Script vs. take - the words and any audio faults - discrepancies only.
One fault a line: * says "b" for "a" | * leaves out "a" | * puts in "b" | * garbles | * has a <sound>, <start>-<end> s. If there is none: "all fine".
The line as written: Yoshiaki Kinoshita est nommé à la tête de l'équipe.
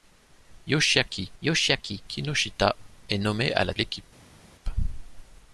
* puts in "yoshiaki"
* leaves out "tête de"